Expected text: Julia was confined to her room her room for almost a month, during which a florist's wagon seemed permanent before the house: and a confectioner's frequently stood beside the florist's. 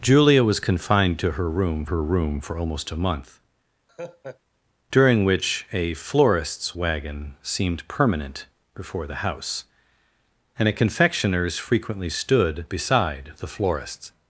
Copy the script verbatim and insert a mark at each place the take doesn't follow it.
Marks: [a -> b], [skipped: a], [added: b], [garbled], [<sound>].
Julia was confined to her room her room for almost a month, [laugh] during which a florist's wagon seemed permanent before the house: and a confectioner's frequently stood beside the florist's.